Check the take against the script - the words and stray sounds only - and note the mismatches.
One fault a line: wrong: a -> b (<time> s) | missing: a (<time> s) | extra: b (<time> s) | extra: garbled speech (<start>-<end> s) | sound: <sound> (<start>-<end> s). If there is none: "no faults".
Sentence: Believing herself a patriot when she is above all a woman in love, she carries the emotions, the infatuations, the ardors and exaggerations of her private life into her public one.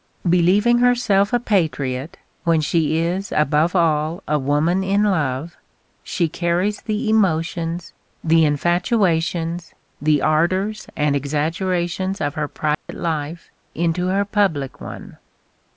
sound: dropout (12.7-12.9 s)